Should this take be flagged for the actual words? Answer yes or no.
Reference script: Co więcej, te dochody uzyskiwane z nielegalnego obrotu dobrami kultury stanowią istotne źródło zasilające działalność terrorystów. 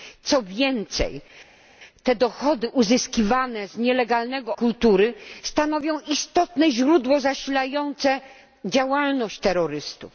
yes